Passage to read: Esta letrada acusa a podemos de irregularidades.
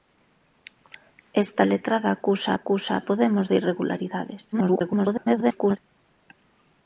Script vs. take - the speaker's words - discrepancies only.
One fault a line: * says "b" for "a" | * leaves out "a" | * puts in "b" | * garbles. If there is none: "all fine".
* puts in "acusa"
* garbles